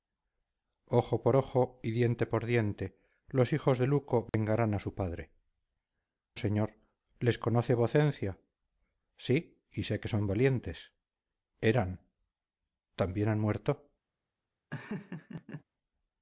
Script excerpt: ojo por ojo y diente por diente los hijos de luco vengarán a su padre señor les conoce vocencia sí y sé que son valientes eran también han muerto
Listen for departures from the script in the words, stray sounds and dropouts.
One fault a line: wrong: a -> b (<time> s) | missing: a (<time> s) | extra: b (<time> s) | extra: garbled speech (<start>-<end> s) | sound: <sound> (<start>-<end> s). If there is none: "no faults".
sound: dropout (4.3-4.3 s)
sound: laugh (14.7-15.6 s)